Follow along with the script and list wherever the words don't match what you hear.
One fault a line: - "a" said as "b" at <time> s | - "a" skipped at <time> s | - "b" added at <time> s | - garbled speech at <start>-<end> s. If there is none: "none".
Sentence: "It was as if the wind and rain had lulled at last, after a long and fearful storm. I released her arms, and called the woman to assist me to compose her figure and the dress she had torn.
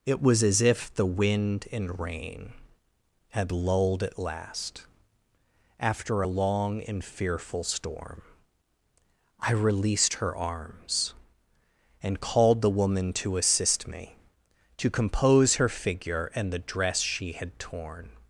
none